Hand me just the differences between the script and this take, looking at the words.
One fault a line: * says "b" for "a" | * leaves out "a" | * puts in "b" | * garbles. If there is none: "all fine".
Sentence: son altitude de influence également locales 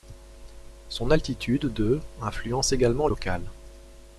all fine